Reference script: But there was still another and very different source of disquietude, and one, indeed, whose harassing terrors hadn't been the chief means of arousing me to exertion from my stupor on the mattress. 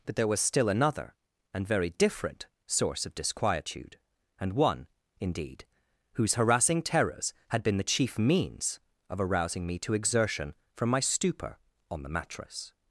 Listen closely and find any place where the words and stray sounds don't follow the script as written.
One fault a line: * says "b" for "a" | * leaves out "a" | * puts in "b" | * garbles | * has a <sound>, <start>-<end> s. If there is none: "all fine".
* says "had" for "hadn't"